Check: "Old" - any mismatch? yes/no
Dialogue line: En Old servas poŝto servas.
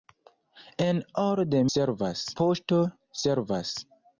no